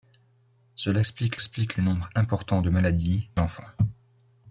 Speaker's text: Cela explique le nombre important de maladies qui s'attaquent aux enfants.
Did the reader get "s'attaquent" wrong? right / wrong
wrong